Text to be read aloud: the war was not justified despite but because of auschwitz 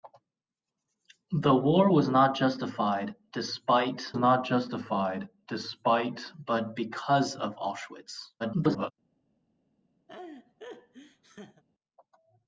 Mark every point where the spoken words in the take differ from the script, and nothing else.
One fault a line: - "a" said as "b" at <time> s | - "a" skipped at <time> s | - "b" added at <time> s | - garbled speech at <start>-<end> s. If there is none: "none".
- "not justified despite" added at 4.2 s
- garbled speech at 8.4-8.9 s